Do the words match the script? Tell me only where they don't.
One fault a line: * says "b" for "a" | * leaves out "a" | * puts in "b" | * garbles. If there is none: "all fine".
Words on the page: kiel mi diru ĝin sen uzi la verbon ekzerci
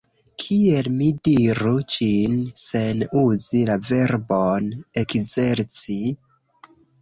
all fine